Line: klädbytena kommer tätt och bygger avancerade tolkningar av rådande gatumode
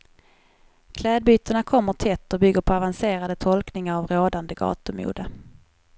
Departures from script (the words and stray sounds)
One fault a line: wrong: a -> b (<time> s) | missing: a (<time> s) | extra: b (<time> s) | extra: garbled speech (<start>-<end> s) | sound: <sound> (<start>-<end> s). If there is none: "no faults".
extra: på (2.6 s)